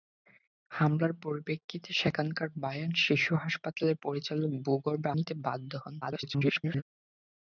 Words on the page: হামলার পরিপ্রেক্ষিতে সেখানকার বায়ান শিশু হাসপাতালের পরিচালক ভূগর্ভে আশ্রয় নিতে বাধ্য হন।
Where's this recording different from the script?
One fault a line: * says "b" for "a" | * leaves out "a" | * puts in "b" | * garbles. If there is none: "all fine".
* leaves out "আশ্রয়"
* garbles